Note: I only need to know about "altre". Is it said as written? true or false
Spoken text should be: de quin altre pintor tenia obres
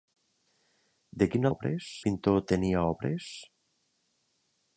false